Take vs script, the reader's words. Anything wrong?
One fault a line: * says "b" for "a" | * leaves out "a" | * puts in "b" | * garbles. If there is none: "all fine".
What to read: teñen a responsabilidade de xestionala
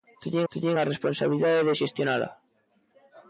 * puts in "teñen"